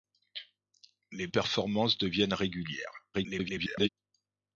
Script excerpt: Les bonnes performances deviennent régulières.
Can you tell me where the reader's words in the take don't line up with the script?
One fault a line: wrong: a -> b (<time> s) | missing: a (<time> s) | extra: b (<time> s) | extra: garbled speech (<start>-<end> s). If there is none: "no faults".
missing: bonnes (1.3 s)
extra: garbled speech (3.1-3.9 s)